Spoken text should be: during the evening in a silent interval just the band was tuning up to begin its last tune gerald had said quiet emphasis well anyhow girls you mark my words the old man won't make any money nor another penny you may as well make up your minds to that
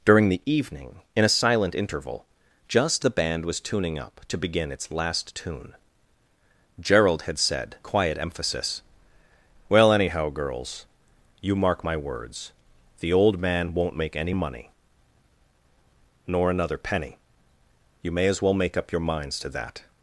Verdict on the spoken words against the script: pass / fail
pass